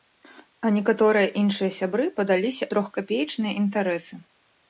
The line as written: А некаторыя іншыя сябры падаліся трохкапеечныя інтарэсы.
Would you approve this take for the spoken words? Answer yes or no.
yes